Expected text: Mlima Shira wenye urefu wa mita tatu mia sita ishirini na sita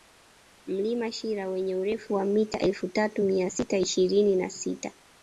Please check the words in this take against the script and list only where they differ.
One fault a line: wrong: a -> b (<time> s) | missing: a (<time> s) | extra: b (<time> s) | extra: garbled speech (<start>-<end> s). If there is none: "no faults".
extra: elfu (2.6 s)